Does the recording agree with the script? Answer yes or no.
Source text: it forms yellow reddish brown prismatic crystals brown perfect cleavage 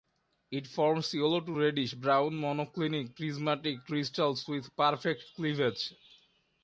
no